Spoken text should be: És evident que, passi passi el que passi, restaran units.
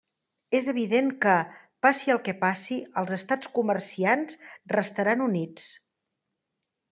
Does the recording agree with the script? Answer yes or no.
no